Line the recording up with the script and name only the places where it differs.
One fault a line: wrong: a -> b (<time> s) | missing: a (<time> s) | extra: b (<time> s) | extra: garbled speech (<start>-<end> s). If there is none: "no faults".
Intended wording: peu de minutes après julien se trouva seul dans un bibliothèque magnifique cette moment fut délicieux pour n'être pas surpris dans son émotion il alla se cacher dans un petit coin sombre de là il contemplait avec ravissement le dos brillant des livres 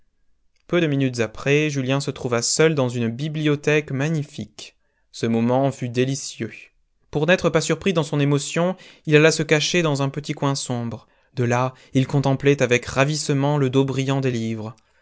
wrong: un -> une (2.9 s)
wrong: cette -> ce (5.1 s)